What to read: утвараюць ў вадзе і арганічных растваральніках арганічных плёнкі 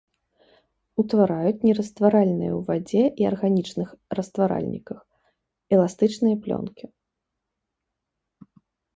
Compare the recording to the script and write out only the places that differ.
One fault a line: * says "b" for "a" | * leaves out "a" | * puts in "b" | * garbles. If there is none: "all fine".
* puts in "нерастваральныя"
* says "эластычныя" for "арганічных"